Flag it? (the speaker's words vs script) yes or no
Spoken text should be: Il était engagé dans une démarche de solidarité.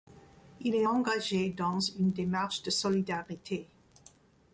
yes